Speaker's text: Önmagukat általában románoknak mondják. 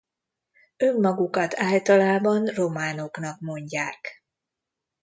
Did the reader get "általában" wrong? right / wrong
right